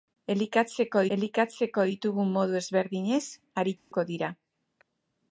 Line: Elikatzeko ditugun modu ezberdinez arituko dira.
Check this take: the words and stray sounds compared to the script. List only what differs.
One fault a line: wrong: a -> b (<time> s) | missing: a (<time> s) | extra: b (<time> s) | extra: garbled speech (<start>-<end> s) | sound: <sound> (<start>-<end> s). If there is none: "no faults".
extra: elikatzeko (1.2 s)
sound: dropout (3.8-3.9 s)